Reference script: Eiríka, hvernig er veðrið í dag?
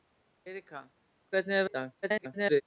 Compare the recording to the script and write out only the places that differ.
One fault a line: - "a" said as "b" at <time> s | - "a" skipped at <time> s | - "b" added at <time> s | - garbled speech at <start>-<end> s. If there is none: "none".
- "veðrið" skipped at 1.7 s
- garbled speech at 2.0-2.6 s